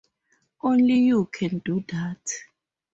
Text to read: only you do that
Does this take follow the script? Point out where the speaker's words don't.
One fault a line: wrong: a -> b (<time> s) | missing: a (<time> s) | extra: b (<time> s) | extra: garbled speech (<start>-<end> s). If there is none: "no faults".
extra: can (1.3 s)